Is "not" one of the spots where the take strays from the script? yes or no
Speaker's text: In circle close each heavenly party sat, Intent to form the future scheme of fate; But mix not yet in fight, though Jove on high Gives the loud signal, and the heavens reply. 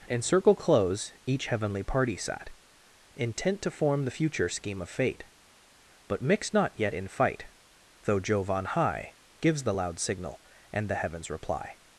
no